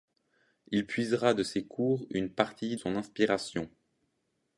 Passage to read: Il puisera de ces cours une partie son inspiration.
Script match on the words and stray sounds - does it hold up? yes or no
yes